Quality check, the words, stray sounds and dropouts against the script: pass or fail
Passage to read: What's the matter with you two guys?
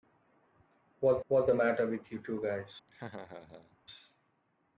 fail